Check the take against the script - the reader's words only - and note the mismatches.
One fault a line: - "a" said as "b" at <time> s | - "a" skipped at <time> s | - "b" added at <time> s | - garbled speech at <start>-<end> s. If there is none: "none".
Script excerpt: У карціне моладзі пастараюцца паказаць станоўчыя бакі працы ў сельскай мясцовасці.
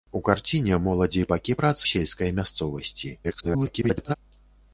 - "пастараюцца паказаць станоўчыя" skipped at 1.2 s
- "ў" skipped at 1.8 s
- garbled speech at 3.2-4.2 s